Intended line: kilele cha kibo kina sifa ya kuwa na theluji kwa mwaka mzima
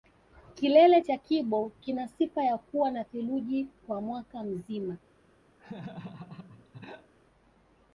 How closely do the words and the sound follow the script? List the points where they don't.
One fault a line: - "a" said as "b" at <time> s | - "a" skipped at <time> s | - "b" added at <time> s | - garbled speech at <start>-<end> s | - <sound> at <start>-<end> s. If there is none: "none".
- laugh at 5.6-7.1 s